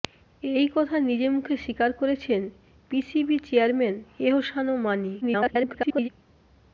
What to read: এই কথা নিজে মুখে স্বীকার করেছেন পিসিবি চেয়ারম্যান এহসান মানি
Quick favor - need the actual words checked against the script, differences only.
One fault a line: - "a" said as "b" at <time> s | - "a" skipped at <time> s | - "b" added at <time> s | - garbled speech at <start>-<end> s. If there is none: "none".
- garbled speech at 5.2-6.1 s